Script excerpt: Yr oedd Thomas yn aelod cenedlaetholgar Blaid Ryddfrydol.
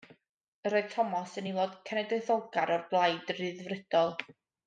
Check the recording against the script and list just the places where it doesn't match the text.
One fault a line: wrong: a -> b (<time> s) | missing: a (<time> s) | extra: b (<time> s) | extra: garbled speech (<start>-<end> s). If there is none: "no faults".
extra: o'r (2.8 s)